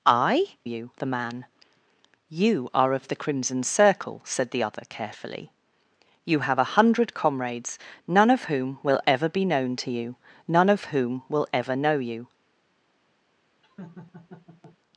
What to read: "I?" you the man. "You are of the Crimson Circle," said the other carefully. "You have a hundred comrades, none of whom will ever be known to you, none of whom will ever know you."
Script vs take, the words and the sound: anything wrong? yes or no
yes